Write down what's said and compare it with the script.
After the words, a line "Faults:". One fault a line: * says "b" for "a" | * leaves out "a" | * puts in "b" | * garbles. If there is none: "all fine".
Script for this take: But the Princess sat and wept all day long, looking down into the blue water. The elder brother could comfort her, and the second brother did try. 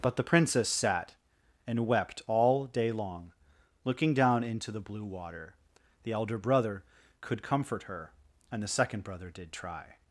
But the Princess sat and wept all day long, looking down into the blue water. The elder brother could comfort her, and the second brother did try.
Faults:
all fine